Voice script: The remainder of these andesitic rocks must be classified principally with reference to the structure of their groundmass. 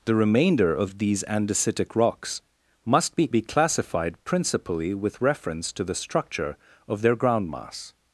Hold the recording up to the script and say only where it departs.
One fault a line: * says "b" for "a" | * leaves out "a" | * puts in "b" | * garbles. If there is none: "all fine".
* puts in "be"